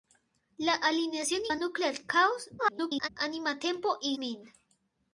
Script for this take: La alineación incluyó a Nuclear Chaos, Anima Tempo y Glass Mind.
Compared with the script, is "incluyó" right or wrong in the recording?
wrong